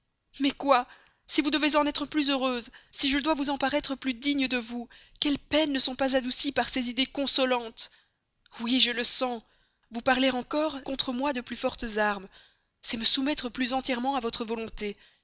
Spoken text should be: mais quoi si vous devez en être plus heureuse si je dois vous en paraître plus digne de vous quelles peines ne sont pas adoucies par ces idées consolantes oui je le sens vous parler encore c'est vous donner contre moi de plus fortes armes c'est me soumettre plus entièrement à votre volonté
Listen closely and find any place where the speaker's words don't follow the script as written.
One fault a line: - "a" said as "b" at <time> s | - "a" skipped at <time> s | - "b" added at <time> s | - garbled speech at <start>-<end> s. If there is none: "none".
- "c'est vous donner" skipped at 10.8 s